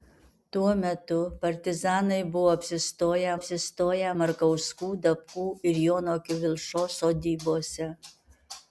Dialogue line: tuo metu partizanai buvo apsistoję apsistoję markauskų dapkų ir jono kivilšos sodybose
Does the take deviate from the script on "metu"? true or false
false